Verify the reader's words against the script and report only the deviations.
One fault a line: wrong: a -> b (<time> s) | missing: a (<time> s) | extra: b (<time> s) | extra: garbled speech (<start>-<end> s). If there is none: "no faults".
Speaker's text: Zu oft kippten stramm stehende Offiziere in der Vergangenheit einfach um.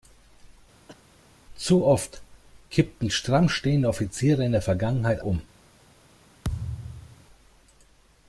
missing: einfach (5.2 s)